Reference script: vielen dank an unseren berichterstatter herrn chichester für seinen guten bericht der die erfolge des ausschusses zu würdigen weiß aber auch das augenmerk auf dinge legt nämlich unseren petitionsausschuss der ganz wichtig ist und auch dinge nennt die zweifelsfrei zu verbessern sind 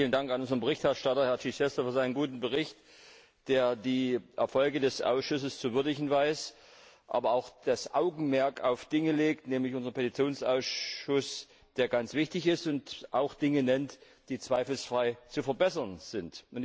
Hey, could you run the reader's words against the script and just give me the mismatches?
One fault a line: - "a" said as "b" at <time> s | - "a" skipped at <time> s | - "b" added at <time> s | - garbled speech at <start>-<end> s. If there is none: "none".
none